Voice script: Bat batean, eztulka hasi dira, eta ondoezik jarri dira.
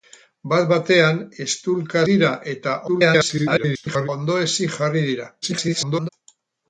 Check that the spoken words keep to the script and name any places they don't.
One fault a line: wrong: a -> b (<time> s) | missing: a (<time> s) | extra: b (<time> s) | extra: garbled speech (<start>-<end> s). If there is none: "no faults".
missing: hasi (2.0 s)
extra: garbled speech (2.9-4.1 s)
extra: garbled speech (5.4-6.1 s)